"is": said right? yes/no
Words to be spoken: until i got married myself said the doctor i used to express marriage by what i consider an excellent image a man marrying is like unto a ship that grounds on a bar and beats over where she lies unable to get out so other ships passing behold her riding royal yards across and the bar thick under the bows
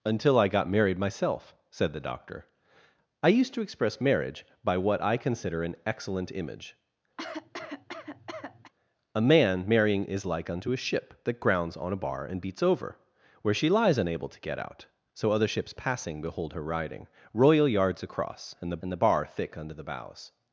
yes